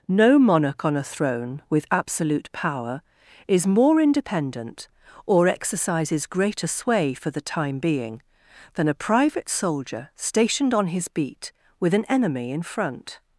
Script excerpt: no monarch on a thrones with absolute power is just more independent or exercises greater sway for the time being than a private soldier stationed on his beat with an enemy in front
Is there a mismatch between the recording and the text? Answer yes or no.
yes